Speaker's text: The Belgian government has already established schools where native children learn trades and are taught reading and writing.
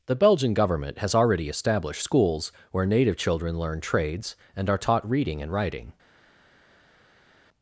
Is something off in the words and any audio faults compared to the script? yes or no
no